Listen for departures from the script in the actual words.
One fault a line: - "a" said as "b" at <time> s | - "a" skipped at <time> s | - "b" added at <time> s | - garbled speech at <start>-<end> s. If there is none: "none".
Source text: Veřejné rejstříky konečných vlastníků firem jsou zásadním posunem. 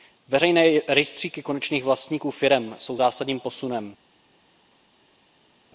none